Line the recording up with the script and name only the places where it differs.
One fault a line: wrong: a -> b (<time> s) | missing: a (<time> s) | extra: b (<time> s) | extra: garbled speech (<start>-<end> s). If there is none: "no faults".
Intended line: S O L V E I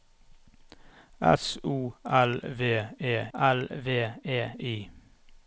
extra: L V E (3.3 s)